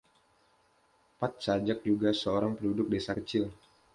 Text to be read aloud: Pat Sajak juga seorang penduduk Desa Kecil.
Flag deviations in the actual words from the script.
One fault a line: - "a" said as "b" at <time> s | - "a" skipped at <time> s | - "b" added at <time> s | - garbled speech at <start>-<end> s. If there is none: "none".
none